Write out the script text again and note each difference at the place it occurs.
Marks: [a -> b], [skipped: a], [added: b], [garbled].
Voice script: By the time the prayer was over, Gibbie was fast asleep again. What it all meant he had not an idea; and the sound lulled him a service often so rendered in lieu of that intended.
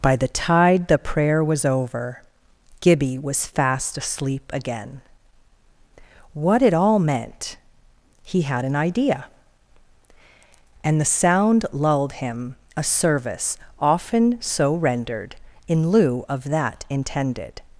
By the [time -> tide] the prayer was over, Gibbie was fast asleep again. What it all meant he had [skipped: not] an idea; and the sound lulled him a service often so rendered in lieu of that intended.